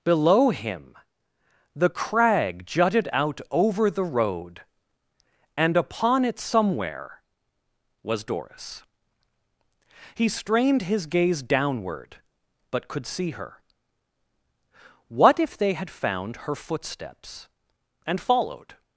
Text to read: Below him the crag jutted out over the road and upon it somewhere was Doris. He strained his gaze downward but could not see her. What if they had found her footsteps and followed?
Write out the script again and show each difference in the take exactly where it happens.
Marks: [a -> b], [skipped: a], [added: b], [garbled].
Below him the crag jutted out over the road and upon it somewhere was Doris. He strained his gaze downward but could [skipped: not] see her. What if they had found her footsteps and followed?